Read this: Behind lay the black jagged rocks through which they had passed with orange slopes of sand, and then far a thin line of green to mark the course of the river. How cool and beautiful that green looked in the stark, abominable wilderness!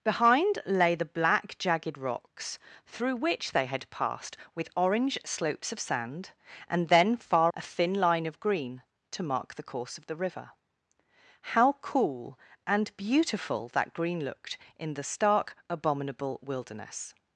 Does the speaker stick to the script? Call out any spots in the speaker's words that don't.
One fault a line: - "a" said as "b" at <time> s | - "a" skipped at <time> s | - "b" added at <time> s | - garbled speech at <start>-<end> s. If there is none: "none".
none